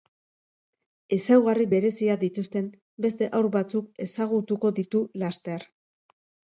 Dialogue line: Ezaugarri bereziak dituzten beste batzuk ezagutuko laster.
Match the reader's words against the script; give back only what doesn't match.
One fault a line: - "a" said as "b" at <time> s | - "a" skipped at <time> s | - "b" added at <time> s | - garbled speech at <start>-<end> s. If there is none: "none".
- "haur" added at 3.3 s
- "ditu" added at 4.8 s